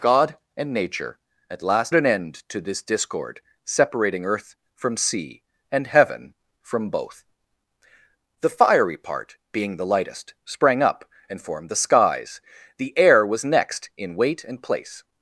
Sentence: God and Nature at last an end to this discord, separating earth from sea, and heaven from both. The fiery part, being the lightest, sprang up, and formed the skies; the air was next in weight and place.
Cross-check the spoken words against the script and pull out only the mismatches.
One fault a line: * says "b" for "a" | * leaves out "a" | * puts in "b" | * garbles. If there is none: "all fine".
all fine